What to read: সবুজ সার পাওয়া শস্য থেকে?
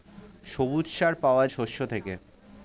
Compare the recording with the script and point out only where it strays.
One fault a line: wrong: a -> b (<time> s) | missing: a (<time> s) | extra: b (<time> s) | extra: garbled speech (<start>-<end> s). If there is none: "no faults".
no faults